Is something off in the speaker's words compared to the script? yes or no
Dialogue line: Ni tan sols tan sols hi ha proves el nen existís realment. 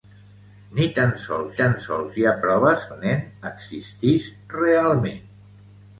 no